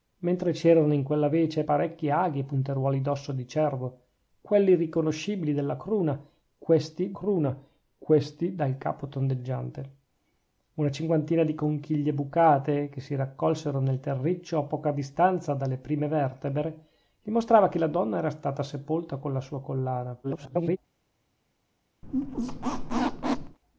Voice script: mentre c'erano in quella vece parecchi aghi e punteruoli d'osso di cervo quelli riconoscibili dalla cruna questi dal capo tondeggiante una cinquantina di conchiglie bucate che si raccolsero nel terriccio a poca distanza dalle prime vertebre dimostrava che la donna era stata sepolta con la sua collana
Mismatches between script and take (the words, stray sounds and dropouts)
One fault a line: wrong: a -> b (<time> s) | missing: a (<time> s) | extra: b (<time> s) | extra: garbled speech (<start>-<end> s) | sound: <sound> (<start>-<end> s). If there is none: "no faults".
extra: cruna questi (7.1 s)
extra: garbled speech (20.2-20.8 s)
sound: squeak (22.0-23.6 s)